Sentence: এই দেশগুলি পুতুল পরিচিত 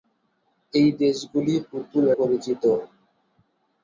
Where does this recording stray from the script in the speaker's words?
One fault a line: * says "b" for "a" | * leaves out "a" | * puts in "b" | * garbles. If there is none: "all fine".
all fine